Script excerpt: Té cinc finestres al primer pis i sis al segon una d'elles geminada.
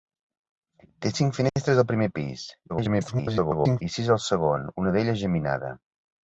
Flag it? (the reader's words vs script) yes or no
yes